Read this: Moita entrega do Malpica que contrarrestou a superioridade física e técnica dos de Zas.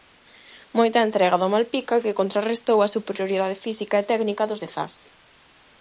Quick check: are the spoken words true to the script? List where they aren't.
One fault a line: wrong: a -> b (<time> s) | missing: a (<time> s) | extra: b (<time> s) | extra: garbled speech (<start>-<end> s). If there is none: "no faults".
no faults